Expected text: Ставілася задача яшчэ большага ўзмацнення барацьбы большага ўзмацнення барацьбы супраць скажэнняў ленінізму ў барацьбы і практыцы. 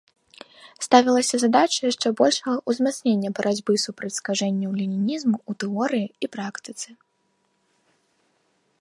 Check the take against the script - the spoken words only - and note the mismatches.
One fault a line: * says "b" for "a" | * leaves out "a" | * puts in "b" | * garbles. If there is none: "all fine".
* leaves out "большага ўзмацнення барацьбы"
* says "тэорыі" for "барацьбы"